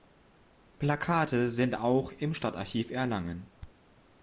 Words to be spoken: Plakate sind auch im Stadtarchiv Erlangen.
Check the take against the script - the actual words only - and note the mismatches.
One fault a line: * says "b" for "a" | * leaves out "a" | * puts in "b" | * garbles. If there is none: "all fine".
all fine